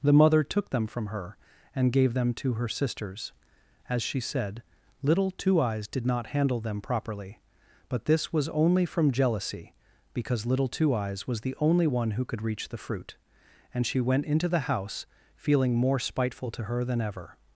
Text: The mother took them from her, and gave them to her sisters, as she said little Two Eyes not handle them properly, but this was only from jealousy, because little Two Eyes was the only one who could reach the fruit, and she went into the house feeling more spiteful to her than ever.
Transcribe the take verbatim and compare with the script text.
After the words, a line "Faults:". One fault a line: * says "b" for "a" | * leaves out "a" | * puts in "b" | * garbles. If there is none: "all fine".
The mother took them from her, and gave them to her sisters, as she said little Two Eyes did not handle them properly, but this was only from jealousy, because little Two Eyes was the only one who could reach the fruit, and she went into the house feeling more spiteful to her than ever.
Faults:
* puts in "did"